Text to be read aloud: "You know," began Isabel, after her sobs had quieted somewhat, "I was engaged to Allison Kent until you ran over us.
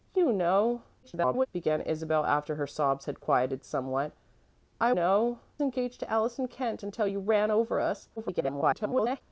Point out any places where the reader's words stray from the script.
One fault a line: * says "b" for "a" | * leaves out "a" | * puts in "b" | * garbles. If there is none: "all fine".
* garbles
* says "know" for "was"
* garbles